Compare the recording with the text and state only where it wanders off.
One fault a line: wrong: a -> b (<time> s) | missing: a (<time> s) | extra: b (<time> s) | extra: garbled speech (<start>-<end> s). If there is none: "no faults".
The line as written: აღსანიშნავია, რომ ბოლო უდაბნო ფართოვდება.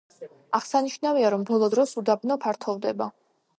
extra: დროს (1.7 s)